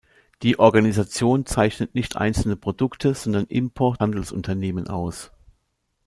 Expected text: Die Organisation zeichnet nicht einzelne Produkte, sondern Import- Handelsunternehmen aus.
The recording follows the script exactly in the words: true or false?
true